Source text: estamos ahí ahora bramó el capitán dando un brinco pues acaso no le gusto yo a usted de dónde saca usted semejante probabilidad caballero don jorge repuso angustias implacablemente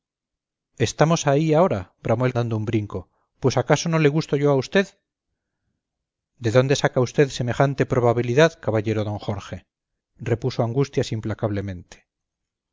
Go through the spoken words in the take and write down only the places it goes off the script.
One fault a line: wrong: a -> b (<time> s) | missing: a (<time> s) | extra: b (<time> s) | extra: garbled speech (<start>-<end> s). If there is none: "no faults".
missing: capitán (2.3 s)